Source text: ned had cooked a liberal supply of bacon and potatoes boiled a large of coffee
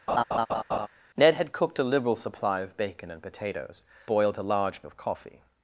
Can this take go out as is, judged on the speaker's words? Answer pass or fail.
pass